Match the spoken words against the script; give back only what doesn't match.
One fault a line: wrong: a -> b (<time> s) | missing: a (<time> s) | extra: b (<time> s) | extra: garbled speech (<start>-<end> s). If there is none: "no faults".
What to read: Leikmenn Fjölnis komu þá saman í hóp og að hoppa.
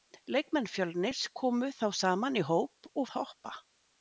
no faults